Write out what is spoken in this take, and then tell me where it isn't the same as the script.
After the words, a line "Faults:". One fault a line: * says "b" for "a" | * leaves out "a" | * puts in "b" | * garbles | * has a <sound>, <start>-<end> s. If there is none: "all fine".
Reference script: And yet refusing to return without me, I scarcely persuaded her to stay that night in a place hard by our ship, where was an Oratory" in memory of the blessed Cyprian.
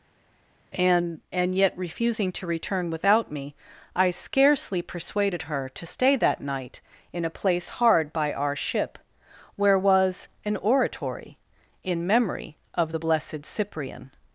And and yet refusing to return without me, I scarcely persuaded her to stay that night in a place hard by our ship, where was an Oratory" in memory of the blessed Cyprian.
Faults:
* puts in "and"